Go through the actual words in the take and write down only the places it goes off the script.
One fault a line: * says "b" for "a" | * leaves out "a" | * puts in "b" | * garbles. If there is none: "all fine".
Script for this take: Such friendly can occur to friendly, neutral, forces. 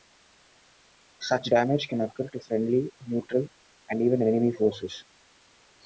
* says "damage" for "friendly"
* puts in "and even enemy"